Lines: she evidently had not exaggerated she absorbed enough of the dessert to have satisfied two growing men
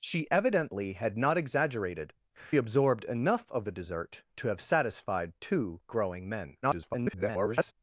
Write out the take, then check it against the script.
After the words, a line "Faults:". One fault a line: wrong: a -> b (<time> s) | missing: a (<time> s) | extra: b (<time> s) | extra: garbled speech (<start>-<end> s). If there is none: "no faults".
she evidently had not exaggerated absorbed enough of the dessert to have satisfied two growing men [garbled]
Faults:
missing: she (2.1 s)
extra: garbled speech (6.6-7.7 s)